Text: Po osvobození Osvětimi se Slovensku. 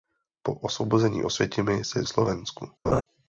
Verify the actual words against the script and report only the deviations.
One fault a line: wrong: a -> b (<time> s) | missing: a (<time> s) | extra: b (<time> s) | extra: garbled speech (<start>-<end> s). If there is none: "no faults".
no faults